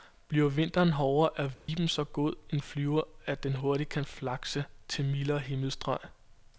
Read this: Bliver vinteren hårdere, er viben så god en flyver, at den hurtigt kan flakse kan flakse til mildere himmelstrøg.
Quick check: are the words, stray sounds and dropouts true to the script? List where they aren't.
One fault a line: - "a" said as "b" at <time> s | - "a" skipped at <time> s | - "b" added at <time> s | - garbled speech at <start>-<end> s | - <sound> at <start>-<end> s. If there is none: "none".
- dropout at 1.5-1.7 s
- "kan flakse" skipped at 4.7 s